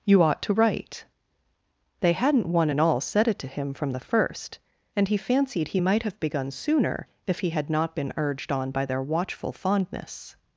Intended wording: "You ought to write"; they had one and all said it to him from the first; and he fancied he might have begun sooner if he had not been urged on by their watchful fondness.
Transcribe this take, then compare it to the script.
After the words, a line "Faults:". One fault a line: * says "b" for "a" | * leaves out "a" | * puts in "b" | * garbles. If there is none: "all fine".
"You ought to write"; they hadn't one and all said it to him from the first; and he fancied he might have begun sooner if he had not been urged on by their watchful fondness.
Faults:
* says "hadn't" for "had"